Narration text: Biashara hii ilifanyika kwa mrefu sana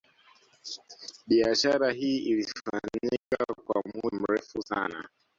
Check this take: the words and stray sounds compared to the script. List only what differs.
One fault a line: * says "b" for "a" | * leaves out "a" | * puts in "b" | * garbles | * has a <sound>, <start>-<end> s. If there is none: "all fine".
* has a dropout, 3.2-3.3 s
* puts in "muda"